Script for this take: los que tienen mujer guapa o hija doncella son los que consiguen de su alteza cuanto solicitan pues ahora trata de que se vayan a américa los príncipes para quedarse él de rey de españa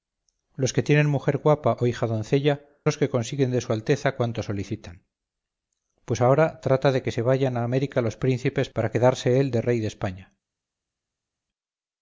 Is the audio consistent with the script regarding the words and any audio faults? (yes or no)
no